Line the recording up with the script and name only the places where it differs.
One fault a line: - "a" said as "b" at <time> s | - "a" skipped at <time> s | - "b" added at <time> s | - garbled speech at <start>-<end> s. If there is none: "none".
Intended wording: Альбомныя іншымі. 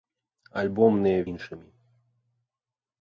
none